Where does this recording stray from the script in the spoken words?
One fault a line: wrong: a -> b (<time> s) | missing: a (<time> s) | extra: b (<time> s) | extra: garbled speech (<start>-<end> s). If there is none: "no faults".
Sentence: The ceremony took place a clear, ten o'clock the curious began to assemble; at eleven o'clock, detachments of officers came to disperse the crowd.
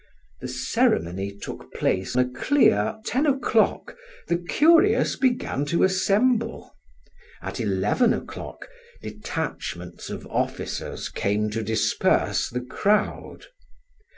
no faults